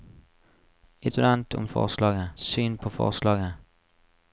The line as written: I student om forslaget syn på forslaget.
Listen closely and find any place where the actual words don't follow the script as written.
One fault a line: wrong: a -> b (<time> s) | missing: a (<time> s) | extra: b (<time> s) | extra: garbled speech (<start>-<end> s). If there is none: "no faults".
no faults